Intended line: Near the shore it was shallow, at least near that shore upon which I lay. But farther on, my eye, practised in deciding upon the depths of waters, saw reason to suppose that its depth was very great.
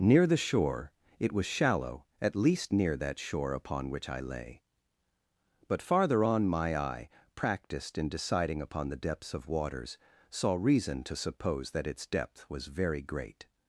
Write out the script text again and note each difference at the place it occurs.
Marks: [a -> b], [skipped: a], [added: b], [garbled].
Near the shore it was shallow, at least near that shore upon which I lay. But farther on, my eye, practised in deciding upon the depths of waters, saw reason to suppose that its depth was very great.